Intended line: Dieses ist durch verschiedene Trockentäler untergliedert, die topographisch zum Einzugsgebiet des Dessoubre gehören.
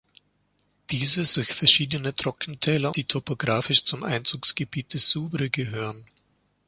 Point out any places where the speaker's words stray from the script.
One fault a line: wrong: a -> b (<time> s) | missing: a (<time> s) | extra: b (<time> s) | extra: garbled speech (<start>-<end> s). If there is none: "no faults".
missing: ist (1.4 s)
missing: untergliedert (2.9 s)
missing: des (4.9 s)